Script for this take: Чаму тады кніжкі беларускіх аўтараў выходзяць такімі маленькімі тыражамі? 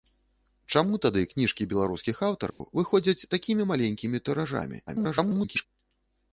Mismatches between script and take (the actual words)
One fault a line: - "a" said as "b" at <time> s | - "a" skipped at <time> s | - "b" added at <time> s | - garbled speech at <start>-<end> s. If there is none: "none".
- garbled speech at 4.9-5.7 s